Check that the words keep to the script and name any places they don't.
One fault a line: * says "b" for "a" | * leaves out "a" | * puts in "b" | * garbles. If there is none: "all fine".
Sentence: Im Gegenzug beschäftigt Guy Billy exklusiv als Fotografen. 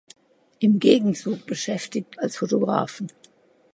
* leaves out "Guy Billy exklusiv"